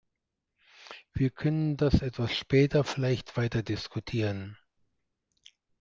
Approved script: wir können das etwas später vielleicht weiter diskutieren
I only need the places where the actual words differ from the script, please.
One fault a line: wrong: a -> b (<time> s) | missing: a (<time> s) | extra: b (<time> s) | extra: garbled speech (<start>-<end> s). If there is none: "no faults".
no faults